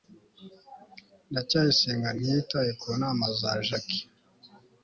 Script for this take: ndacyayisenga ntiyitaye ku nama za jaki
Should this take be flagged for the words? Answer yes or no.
no